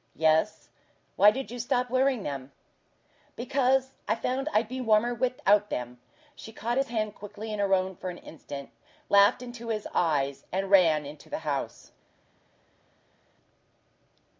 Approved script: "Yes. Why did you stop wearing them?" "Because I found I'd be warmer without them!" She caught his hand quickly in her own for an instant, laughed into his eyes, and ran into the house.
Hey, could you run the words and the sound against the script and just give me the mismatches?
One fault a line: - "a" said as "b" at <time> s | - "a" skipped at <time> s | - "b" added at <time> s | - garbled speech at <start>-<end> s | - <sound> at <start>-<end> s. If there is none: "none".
none